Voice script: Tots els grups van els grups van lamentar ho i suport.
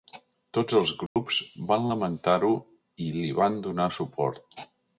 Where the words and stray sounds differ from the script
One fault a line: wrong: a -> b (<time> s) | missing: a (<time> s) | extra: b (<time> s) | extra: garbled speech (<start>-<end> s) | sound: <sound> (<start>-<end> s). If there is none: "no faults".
sound: dropout (1.1-1.2 s)
wrong: els grups van lamentar ho i -> lamentar ho i li van donar (1.9 s)